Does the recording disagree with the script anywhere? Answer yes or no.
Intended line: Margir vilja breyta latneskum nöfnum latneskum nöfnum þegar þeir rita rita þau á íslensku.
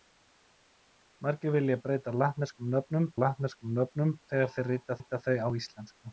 no